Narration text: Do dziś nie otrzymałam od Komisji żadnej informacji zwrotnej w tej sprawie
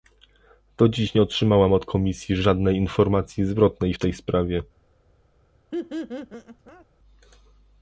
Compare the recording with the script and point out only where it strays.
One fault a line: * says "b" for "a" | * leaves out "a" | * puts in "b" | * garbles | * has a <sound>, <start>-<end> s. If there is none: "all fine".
* has a laugh, 5.7-6.9 s